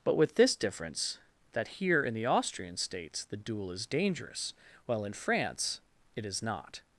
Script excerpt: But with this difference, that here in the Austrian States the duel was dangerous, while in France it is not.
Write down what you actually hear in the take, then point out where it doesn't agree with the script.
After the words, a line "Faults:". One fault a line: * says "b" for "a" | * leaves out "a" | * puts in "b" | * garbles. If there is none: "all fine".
But with this difference, that here in the Austrian States the duel is dangerous, while in France it is not.
Faults:
* says "is" for "was"